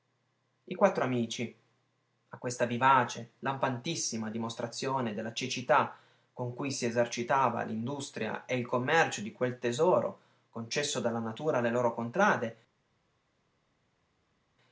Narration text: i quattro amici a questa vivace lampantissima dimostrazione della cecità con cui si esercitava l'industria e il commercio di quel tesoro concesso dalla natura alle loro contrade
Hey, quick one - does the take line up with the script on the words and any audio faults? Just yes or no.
yes